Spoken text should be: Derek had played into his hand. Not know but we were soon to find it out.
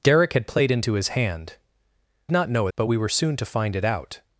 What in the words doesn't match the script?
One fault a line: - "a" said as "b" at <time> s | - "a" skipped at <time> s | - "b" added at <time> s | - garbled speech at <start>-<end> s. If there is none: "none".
none